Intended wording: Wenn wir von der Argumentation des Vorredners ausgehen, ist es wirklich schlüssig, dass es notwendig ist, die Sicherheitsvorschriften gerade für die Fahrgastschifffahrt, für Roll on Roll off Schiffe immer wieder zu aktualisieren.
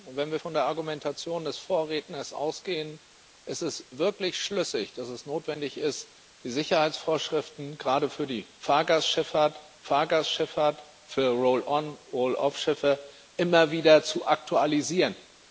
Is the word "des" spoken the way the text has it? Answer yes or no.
yes